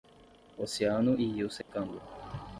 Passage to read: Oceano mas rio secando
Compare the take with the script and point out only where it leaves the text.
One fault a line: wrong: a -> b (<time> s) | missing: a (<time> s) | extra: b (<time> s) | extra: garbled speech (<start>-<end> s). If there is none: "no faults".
wrong: mas -> e (1.1 s)